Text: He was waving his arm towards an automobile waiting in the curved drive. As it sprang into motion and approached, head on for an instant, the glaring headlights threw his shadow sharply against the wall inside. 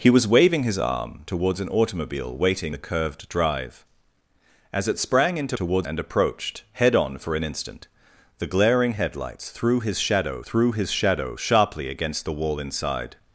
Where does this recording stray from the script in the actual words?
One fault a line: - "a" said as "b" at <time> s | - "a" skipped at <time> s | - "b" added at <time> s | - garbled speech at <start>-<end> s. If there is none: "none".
- "in" skipped at 2.7 s
- "motion" said as "towards" at 5.6 s
- "threw his shadow" added at 10.4 s